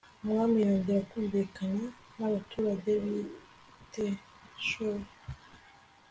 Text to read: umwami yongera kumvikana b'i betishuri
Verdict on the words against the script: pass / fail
fail